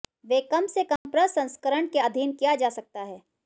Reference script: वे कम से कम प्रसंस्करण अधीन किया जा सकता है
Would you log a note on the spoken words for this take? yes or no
yes